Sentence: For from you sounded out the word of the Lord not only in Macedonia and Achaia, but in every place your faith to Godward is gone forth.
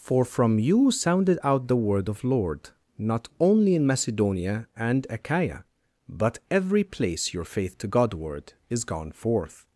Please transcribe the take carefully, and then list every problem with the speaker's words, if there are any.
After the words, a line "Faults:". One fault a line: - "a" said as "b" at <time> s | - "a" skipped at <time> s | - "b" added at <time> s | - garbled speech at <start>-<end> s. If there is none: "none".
For from you sounded out the word of Lord not only in Macedonia and Achaia, but every place your faith to Godward is gone forth.
Faults:
- "the" skipped at 2.2 s
- "in" skipped at 6.4 s